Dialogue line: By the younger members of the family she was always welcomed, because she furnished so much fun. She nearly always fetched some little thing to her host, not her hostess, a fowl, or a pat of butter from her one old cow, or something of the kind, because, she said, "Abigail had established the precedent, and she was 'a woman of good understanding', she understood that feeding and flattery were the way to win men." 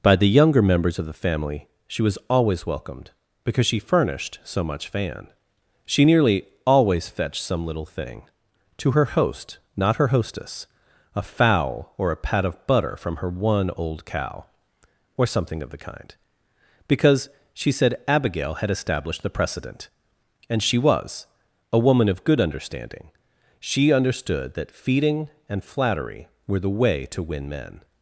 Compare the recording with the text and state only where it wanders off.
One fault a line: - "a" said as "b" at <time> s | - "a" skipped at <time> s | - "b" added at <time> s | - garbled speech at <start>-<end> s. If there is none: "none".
- "fun" said as "fan" at 4.9 s